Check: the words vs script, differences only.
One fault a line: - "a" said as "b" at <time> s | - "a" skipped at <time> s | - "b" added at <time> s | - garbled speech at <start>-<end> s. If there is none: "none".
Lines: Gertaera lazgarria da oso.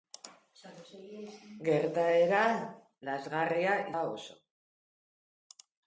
none